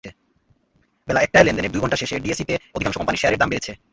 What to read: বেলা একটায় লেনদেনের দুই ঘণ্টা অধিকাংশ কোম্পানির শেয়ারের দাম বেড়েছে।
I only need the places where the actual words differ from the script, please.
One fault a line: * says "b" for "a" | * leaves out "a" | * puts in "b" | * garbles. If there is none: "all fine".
* puts in "শেষে ডিএসইতে"